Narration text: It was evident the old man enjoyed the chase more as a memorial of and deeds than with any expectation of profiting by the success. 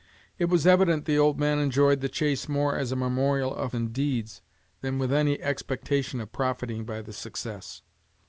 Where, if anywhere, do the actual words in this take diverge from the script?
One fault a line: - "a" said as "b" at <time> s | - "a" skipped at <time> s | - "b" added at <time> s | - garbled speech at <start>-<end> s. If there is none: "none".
none